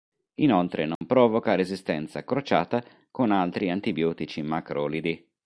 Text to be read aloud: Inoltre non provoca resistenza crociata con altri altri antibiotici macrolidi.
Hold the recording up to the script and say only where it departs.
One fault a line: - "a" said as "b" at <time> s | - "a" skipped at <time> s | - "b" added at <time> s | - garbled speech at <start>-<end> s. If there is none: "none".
- "altri" skipped at 3.7 s